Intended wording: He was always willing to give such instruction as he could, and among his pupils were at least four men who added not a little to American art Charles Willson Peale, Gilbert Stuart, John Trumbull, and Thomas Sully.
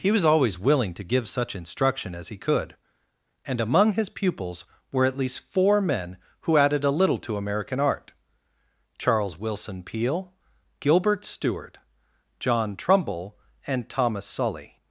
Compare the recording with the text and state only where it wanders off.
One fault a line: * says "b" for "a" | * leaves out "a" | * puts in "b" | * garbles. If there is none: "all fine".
* leaves out "not"